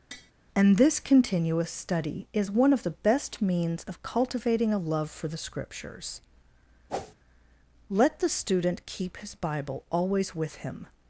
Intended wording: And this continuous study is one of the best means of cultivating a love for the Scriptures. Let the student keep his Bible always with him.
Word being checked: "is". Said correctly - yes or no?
yes